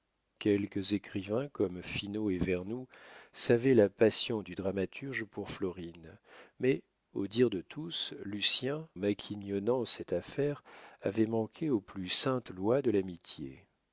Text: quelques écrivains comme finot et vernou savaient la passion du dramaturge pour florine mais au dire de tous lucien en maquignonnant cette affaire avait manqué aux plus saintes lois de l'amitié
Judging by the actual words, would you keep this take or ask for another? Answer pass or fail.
fail